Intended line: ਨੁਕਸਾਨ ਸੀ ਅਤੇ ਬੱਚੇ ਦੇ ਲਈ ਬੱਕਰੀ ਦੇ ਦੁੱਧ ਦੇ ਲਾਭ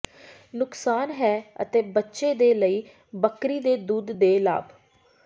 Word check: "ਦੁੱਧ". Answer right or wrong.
right